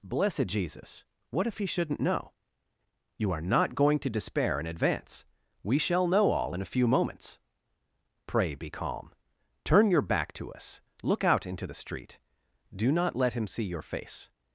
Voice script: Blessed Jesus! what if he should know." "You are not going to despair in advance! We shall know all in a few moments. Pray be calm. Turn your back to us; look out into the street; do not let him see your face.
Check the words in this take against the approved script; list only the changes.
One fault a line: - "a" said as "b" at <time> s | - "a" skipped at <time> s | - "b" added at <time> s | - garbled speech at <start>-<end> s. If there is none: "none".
- "should" said as "shouldn't" at 1.6 s